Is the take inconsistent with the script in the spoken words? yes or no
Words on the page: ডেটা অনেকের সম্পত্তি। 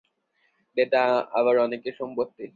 yes